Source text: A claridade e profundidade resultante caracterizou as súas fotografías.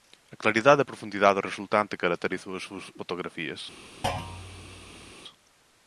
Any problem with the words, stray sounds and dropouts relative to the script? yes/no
yes